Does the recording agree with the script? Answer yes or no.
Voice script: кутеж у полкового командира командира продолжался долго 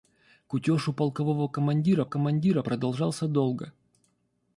yes